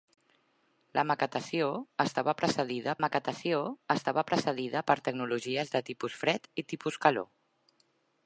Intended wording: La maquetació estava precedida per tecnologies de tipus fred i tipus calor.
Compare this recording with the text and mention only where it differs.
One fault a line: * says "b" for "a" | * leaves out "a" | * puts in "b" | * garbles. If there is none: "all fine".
* puts in "maquetació estava precedida"